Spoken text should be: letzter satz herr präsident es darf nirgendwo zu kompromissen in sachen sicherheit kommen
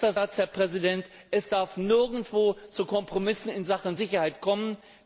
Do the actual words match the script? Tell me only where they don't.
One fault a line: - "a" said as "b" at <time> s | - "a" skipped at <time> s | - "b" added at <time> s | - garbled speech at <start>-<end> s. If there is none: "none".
none